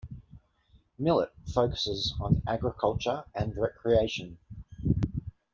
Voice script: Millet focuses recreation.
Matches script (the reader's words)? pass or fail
fail